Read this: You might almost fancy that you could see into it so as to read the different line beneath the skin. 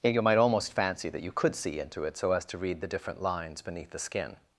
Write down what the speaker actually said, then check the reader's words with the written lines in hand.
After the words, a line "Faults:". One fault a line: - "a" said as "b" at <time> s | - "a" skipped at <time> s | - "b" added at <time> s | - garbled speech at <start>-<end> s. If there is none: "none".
You might almost fancy that you could see into it so as to read the different lines beneath the skin.
Faults:
- "line" said as "lines" at 3.2 s